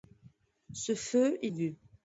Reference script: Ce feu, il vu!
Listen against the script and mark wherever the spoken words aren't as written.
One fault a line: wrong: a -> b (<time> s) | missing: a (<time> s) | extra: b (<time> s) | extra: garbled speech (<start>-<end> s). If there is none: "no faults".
no faults